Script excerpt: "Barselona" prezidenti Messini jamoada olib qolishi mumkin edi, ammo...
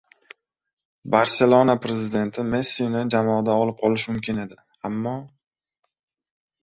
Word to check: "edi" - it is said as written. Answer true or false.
true